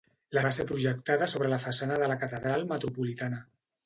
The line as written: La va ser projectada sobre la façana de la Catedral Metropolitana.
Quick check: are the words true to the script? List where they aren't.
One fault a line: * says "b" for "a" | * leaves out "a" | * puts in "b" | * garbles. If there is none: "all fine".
all fine